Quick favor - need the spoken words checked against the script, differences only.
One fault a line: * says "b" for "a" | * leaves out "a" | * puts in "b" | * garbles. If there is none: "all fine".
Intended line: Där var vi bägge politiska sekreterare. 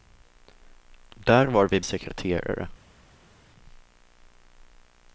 * leaves out "bägge politiska"